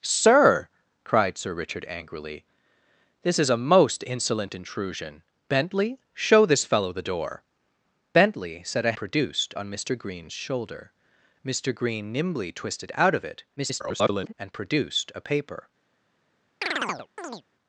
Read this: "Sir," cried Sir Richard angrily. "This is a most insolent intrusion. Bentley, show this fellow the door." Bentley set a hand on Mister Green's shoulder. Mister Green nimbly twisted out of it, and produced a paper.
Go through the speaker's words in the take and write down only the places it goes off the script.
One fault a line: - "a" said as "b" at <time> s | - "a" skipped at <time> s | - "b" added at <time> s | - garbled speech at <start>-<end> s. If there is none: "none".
- "hand" said as "produced" at 9.0 s
- garbled speech at 13.6-14.3 s